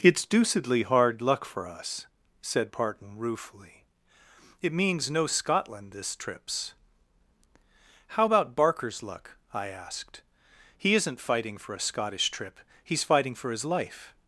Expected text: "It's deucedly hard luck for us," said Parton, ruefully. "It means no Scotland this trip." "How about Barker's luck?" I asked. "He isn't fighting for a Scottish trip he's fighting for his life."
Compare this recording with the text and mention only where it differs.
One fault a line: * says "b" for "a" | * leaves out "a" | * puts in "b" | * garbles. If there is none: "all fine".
* says "trips" for "trip"